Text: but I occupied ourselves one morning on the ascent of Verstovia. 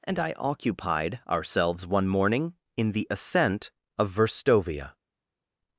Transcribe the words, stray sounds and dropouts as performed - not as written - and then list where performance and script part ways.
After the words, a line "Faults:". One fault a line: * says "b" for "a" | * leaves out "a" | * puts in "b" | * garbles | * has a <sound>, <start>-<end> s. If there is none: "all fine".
and I occupied ourselves one morning in the ascent of Verstovia.
Faults:
* says "and" for "but"
* says "in" for "on"